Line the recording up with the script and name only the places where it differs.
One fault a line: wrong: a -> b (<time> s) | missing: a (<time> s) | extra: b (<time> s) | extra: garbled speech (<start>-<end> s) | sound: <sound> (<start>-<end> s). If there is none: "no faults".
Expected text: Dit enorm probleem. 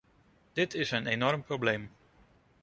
extra: is een (0.7 s)